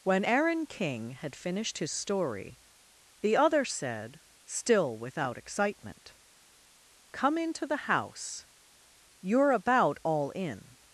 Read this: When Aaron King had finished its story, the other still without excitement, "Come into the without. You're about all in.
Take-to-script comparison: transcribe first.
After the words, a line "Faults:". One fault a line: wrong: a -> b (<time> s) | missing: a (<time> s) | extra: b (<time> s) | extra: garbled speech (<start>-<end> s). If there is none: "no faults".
When Aaron King had finished his story, the other said, still without excitement, "Come into the house. You're about all in.
Faults:
wrong: its -> his (1.8 s)
extra: said (3.6 s)
wrong: without -> house (7.9 s)